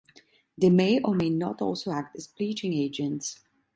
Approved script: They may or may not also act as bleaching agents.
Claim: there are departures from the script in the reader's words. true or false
false